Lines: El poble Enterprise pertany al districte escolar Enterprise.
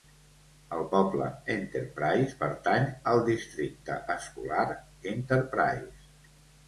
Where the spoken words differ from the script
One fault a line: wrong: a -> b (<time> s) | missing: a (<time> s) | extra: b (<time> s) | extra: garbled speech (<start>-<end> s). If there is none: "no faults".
no faults